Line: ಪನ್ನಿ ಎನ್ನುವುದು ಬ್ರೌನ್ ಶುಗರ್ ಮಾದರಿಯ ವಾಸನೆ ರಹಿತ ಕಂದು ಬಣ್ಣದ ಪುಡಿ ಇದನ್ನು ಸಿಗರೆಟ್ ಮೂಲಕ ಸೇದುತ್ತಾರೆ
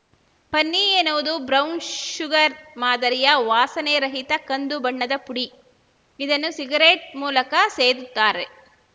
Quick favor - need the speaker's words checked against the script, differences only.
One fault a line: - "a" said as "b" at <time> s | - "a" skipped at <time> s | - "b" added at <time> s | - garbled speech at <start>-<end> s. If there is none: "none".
none